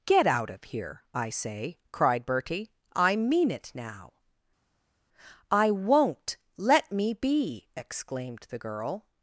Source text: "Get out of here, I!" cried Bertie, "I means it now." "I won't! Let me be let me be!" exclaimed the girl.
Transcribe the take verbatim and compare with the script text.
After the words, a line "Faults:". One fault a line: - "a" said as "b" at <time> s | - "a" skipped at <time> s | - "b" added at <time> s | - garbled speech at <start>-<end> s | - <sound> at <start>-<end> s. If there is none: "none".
"Get out of here, I say!" cried Bertie, "I mean it now." "I won't! Let me be!" exclaimed the girl.
Faults:
- "say" added at 1.3 s
- "means" said as "mean" at 3.2 s
- "let me be" skipped at 7.7 s